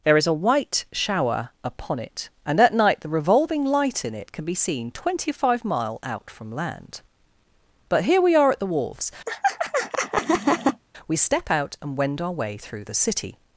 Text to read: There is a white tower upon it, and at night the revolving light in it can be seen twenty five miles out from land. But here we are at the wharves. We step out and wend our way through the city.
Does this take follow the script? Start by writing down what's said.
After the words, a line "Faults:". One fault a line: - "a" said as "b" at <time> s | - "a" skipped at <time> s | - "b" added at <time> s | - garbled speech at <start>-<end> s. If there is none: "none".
There is a white shower upon it, and at night the revolving light in it can be seen twenty five mile out from land. But here we are at the wharves. We step out and wend our way through the city.
Faults:
- "tower" said as "shower" at 0.9 s
- "miles" said as "mile" at 5.6 s